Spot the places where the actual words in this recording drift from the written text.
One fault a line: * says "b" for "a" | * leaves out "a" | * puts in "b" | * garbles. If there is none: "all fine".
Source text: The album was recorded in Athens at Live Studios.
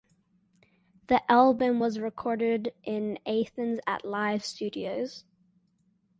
all fine